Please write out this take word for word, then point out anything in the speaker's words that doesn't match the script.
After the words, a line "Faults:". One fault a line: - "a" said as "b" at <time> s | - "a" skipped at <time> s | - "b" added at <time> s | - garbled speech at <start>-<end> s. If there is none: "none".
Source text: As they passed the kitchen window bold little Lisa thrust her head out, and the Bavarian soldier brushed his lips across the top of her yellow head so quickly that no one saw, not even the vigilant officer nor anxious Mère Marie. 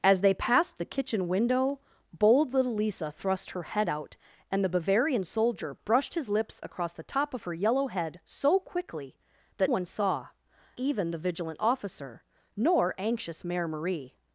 As they passed the kitchen window bold little Lisa thrust her head out, and the Bavarian soldier brushed his lips across the top of her yellow head so quickly that one saw, even the vigilant officer nor anxious Mère Marie.
Faults:
- "no" skipped at 9.7 s
- "not" skipped at 10.3 s